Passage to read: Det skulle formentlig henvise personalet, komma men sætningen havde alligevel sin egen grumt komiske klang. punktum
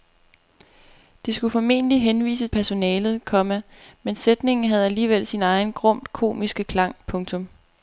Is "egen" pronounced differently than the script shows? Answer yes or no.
no